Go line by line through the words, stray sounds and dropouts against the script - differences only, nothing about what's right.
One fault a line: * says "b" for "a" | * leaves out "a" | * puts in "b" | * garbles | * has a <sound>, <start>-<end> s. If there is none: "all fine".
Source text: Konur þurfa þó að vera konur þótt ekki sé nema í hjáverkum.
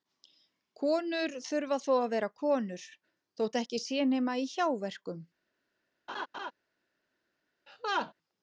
* has a laugh, 6.1-6.5 s
* has a laugh, 7.7-8.1 s